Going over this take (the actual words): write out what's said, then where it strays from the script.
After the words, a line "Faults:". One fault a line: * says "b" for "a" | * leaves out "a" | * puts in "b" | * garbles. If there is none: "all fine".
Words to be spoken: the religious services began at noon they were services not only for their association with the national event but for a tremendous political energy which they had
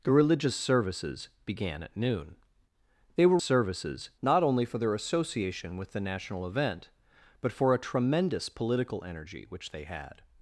the religious services began at noon they were services not only for their association with the national event but for a tremendous political energy which they had
Faults:
all fine